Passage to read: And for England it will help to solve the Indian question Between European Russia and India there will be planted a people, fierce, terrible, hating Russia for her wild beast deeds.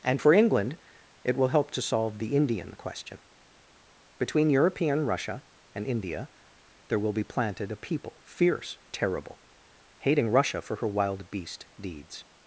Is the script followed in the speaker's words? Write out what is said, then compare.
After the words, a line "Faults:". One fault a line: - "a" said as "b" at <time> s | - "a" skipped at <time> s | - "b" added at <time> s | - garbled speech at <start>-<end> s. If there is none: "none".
And for England it will help to solve the Indian question Between European Russia and India there will be planted a people, fierce, terrible, hating Russia for her wild beast deeds.
Faults:
none